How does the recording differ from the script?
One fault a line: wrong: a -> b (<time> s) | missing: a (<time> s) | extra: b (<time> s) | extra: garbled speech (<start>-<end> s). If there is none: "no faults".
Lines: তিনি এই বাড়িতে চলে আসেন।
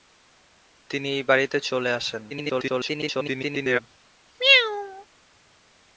extra: garbled speech (2.3-3.8 s)